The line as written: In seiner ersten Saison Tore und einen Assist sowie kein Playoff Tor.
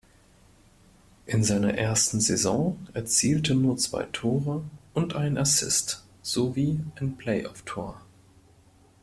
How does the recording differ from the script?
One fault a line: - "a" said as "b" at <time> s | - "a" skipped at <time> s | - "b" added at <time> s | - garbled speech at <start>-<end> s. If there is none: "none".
- "erzielte nur zwei" added at 3.0 s
- "kein" said as "ein" at 7.0 s